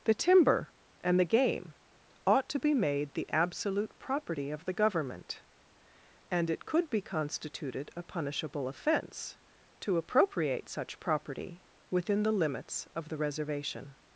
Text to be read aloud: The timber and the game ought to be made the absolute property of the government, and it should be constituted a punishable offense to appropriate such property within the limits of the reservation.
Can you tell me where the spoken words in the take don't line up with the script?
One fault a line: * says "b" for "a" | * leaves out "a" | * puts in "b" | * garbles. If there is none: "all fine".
* says "could" for "should"